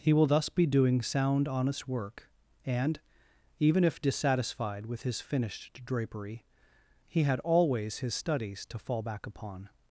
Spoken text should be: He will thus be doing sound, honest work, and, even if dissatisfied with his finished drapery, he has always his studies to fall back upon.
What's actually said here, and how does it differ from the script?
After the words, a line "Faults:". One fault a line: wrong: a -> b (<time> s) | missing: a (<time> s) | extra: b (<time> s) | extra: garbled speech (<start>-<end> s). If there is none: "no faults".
He will thus be doing sound, honest work, and, even if dissatisfied with his finished drapery, he had always his studies to fall back upon.
Faults:
wrong: has -> had (7.2 s)